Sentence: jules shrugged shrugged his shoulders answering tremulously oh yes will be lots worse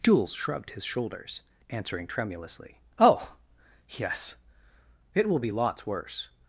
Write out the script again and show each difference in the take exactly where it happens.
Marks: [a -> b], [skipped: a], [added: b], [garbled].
jules shrugged [skipped: shrugged] his shoulders answering tremulously oh yes [added: it] will be lots worse